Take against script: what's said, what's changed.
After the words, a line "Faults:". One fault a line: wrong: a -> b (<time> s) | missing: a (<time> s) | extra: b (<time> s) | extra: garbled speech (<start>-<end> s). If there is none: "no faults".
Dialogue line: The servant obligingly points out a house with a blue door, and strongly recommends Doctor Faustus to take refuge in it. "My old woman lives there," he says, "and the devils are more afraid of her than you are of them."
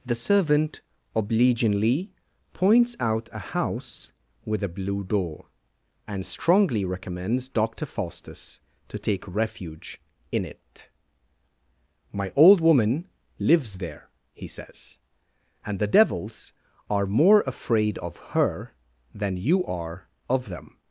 The servant obligingly points out a house with a blue door, and strongly recommends Doctor Faustus to take refuge in it. "My old woman lives there," he says, "and the devils are more afraid of her than you are of them."
Faults:
no faults